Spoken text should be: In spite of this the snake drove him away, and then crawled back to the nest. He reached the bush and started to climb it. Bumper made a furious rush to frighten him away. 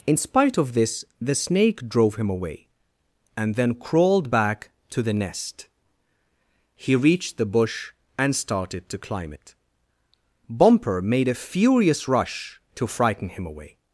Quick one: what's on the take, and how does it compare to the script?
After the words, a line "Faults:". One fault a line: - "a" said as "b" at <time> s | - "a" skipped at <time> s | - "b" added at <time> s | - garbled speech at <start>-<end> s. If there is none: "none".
In spite of this the snake drove him away, and then crawled back to the nest. He reached the bush and started to climb it. Bumper made a furious rush to frighten him away.
Faults:
none